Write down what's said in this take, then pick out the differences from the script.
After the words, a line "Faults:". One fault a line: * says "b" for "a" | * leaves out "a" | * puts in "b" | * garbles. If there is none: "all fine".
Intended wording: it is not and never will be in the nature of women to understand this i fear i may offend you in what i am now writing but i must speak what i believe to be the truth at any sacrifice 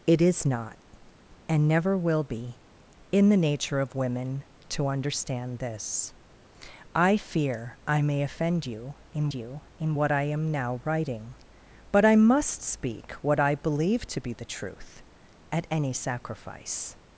it is not and never will be in the nature of women to understand this i fear i may offend you in you in what i am now writing but i must speak what i believe to be the truth at any sacrifice
Faults:
* puts in "you in"